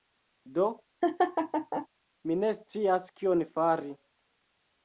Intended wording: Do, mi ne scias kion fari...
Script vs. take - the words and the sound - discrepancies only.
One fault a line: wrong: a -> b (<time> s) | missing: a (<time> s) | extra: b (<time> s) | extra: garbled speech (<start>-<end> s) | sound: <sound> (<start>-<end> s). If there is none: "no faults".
sound: laugh (1.0-1.9 s)